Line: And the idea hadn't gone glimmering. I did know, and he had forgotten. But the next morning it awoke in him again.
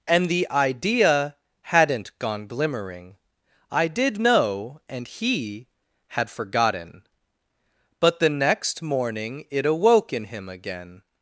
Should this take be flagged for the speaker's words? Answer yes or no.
no